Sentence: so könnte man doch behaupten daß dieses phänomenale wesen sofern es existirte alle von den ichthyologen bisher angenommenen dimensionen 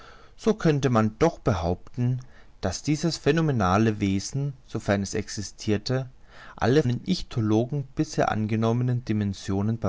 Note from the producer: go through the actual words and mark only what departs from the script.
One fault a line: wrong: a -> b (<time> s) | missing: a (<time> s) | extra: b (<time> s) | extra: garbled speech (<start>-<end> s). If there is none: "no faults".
missing: von (6.8 s)